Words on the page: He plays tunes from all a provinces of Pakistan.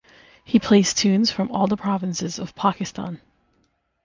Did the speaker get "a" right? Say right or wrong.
wrong